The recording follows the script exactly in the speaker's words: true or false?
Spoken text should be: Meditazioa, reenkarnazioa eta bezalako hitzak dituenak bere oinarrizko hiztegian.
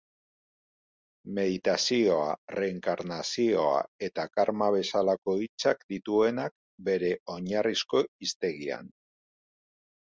false